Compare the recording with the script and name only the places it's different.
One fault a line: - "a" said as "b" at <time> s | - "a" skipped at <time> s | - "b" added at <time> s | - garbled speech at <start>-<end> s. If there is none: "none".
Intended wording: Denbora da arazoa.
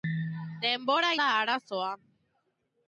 none